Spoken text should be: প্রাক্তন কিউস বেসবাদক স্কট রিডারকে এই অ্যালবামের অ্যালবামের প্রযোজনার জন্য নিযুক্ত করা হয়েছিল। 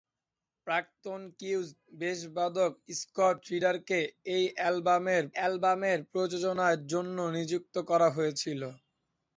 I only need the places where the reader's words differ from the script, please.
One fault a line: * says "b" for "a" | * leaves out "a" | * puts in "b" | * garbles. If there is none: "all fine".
all fine